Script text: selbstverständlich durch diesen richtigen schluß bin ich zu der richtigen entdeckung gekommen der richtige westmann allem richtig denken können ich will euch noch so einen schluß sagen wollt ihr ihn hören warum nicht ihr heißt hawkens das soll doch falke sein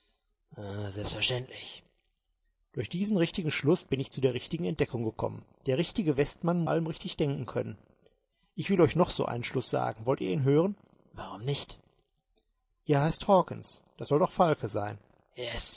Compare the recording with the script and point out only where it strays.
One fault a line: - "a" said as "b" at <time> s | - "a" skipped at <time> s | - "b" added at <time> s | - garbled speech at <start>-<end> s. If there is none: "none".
none